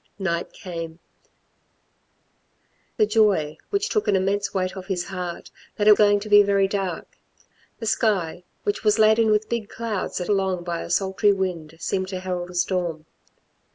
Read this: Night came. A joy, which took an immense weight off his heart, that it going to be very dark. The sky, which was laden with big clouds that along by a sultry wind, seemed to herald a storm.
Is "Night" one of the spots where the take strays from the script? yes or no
no